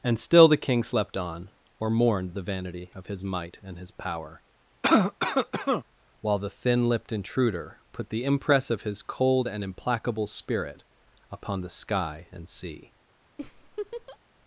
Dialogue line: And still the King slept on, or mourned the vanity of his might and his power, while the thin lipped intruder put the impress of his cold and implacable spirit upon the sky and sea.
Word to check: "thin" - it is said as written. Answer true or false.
true